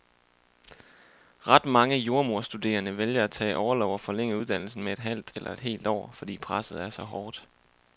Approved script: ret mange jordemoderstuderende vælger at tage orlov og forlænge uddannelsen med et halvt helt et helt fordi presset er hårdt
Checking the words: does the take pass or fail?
fail